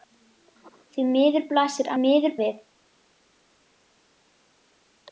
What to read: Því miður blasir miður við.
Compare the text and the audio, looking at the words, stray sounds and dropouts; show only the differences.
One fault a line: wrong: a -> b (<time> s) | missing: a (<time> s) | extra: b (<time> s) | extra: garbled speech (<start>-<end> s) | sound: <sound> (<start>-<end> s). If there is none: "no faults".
no faults